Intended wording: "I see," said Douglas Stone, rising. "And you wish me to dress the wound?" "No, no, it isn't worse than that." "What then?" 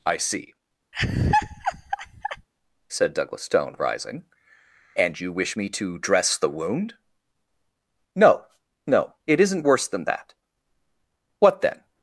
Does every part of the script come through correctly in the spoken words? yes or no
yes